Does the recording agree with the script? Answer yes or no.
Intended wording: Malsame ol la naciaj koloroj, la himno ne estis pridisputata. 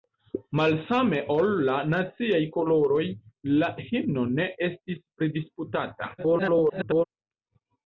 no